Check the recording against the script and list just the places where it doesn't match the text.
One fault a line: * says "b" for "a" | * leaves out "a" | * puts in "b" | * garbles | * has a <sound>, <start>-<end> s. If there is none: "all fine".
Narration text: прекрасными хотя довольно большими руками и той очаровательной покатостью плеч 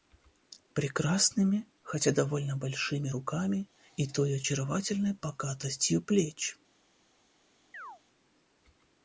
* has a chirp, 7.7-8.0 s